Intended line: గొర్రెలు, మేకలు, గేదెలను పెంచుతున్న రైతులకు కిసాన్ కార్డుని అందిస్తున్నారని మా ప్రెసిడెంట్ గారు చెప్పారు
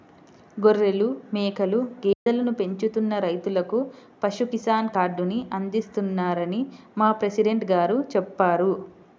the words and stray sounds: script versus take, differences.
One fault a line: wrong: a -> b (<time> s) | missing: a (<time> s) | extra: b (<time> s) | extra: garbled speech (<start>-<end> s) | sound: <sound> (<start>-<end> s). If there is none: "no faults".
sound: dropout (2.1-2.3 s)
extra: పశు (4.2 s)